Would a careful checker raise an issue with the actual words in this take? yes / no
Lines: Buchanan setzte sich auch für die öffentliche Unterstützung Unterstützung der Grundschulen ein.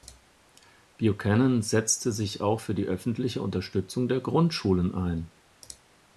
yes